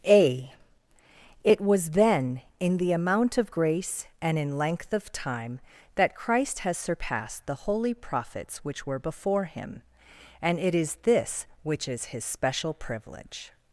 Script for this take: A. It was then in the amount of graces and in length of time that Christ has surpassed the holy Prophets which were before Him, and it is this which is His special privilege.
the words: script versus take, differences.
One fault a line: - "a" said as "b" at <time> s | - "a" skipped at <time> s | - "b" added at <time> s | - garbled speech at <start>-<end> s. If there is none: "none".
- "graces" said as "grace" at 3.5 s